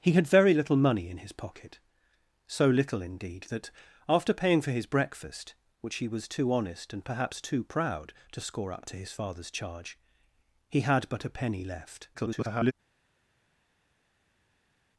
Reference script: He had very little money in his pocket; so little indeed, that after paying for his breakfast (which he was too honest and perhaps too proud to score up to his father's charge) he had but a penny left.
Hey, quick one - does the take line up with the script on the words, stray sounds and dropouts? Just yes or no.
no